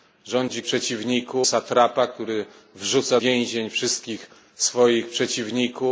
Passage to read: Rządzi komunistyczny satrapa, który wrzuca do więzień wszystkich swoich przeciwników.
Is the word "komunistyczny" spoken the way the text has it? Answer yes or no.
no